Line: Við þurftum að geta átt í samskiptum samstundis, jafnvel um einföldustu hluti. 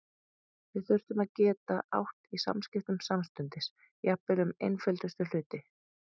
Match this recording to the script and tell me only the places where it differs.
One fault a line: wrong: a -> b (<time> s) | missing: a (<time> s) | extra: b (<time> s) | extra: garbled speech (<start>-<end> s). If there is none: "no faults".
no faults